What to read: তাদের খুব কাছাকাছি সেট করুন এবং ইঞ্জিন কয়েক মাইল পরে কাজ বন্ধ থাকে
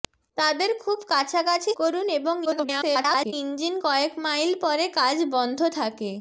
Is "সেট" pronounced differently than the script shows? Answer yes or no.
yes